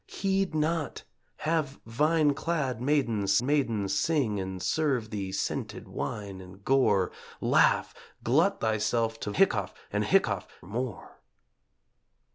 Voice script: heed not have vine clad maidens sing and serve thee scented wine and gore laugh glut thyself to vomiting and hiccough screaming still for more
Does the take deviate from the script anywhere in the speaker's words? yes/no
yes